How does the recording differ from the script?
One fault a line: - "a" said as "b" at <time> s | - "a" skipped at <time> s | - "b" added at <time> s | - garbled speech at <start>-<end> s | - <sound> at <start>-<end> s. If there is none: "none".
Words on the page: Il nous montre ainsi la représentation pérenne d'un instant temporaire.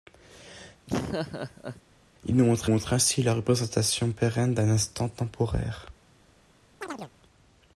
- laugh at 0.9-1.8 s
- "montre" added at 2.7 s
- chirp at 6.8-7.1 s